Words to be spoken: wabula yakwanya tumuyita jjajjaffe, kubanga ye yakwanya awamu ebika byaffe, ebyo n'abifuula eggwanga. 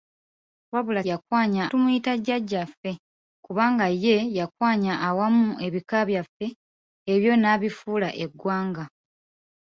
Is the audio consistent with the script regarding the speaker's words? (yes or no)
yes